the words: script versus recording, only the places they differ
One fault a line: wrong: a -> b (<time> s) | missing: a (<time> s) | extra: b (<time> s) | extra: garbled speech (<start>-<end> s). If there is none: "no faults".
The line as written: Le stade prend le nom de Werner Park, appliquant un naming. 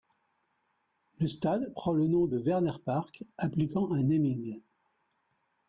no faults